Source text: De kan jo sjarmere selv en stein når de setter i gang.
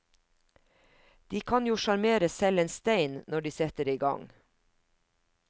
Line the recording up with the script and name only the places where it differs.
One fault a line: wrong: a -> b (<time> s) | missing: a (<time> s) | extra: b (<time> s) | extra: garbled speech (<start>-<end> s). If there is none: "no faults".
no faults